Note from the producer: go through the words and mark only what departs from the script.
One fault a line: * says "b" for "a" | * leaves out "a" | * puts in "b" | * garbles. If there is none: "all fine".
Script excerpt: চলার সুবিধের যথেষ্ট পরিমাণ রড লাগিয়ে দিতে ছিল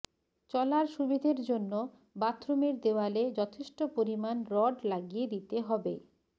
* puts in "জন্য বাথরুমের দেওয়ালে"
* says "হবে" for "ছিল"